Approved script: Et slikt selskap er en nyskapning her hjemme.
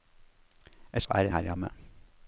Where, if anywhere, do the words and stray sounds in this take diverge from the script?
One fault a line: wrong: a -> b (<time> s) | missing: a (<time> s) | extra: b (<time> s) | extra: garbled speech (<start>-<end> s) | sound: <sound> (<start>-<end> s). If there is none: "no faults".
missing: slikt selskap (1.0 s)
missing: nyskapning (1.3 s)